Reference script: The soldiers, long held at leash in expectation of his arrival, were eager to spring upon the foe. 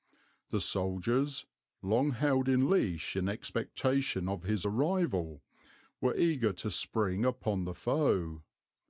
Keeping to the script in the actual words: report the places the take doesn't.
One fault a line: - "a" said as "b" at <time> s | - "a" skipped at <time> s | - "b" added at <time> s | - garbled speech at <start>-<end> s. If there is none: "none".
- "at" said as "in" at 2.5 s